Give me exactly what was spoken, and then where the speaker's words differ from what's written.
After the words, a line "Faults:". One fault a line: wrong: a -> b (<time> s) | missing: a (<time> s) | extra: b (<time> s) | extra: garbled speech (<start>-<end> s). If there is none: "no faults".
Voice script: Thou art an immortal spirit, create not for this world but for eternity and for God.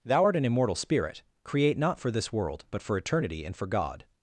Thou art an immortal spirit, create not for this world but for eternity and for God.
Faults:
no faults